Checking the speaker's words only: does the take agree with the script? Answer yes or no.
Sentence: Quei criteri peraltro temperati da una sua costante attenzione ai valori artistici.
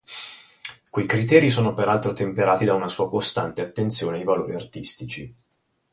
no